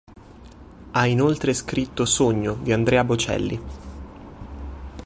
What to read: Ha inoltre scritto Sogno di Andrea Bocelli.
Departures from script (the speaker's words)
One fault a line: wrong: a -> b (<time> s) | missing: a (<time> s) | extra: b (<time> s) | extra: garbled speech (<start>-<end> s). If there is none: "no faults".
no faults